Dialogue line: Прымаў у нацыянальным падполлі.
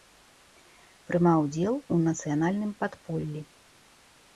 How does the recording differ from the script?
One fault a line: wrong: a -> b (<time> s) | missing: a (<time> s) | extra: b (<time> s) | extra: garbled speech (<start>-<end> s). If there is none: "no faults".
extra: удзел (1.4 s)